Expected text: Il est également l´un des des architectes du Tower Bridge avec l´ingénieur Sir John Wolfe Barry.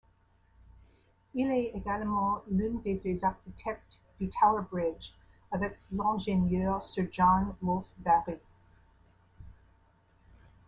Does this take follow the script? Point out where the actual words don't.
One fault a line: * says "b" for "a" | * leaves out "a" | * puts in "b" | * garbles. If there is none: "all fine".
all fine